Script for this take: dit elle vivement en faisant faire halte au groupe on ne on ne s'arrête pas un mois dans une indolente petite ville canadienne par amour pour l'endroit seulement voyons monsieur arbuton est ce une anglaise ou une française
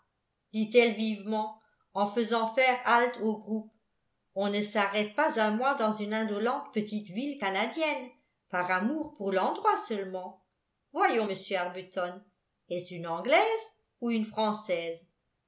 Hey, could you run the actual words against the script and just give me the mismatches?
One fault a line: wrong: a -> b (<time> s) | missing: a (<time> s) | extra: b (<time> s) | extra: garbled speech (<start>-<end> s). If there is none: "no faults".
missing: on ne (4.6 s)